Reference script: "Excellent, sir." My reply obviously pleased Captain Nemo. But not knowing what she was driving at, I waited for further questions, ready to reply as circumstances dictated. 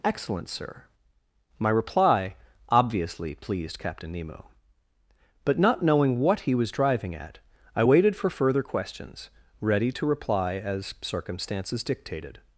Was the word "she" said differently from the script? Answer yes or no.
yes